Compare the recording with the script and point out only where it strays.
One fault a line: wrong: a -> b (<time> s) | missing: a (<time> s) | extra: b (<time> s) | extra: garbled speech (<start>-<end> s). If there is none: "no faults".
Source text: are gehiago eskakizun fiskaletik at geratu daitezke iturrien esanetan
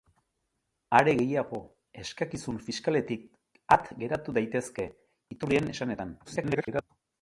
extra: garbled speech (6.2-6.8 s)